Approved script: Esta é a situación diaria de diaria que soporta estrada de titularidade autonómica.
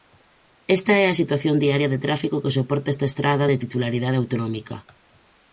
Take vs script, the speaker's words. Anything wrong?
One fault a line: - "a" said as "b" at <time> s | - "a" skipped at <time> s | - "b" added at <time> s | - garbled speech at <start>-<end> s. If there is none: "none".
- "diaria" said as "tráfico" at 2.0 s
- "esta" added at 2.9 s